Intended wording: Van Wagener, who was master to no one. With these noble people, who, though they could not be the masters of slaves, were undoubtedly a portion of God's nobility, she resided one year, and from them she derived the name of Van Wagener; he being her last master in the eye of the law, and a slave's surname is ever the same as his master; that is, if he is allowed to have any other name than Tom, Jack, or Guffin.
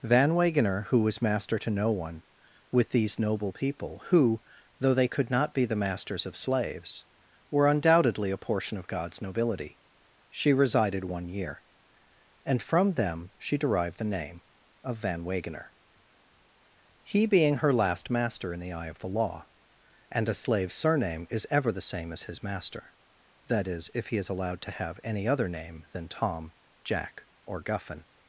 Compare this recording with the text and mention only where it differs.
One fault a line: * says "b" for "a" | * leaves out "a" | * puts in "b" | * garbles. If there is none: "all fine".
all fine